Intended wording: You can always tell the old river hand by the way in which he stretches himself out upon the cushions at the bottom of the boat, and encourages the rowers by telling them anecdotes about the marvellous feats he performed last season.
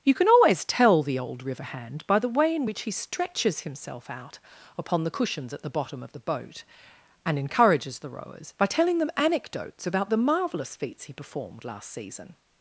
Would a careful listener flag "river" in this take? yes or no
no